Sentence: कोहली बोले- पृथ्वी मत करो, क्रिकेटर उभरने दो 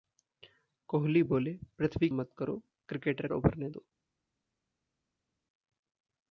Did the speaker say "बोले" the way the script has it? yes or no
yes